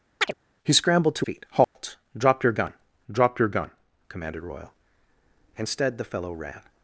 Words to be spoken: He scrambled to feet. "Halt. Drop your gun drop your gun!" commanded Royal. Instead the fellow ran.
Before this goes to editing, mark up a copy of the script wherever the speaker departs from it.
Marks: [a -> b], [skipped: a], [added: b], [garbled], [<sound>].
[chirp] He scrambled to feet. "Halt. [dropout] Drop your gun drop your gun!" commanded Royal. Instead the fellow ran.